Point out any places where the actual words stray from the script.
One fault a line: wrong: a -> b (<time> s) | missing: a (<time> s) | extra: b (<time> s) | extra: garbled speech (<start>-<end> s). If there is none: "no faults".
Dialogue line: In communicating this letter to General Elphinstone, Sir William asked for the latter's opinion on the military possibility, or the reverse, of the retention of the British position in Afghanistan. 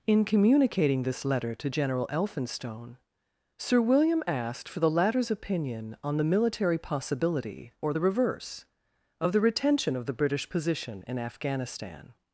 no faults